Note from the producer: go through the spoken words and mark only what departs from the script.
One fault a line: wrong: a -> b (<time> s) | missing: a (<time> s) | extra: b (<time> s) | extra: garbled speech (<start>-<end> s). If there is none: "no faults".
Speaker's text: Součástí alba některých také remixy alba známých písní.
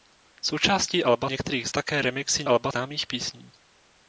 no faults